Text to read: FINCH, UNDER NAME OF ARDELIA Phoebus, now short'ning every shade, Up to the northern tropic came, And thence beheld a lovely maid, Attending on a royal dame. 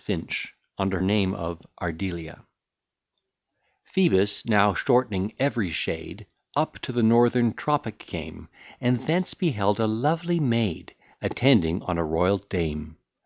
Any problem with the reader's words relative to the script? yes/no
no